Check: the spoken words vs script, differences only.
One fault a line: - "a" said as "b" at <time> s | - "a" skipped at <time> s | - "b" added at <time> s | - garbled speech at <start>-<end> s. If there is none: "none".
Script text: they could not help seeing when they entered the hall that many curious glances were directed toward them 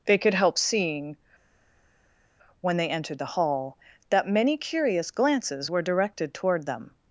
- "not" skipped at 0.3 s